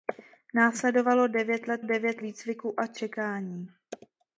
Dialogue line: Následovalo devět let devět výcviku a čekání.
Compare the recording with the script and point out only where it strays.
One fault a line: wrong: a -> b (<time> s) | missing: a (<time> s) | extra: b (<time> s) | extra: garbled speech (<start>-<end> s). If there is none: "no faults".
no faults